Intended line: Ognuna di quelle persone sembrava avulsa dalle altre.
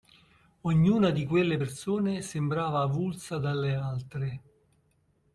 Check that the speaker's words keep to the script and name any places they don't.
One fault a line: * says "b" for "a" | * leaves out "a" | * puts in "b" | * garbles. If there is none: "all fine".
all fine